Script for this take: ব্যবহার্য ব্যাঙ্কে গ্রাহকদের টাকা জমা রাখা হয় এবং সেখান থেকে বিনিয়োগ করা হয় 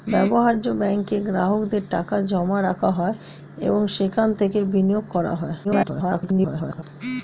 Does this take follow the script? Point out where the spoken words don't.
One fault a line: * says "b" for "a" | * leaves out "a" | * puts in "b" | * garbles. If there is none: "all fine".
* garbles